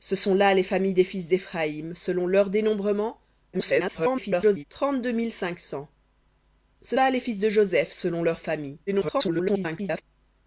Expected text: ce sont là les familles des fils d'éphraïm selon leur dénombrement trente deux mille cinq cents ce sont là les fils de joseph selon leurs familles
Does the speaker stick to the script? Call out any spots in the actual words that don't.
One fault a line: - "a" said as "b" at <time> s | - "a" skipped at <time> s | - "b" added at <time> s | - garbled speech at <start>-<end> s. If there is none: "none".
- garbled speech at 3.5-4.6 s
- "sont" skipped at 7.0 s
- garbled speech at 8.9-10.0 s